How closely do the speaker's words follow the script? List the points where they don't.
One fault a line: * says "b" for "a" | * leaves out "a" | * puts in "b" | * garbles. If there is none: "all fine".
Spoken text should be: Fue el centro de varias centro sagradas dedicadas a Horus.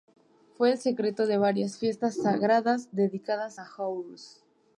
* says "fiestas" for "centro"